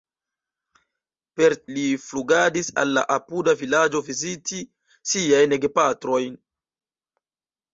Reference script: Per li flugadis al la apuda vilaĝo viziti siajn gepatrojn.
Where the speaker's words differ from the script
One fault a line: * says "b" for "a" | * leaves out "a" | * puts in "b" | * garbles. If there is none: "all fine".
all fine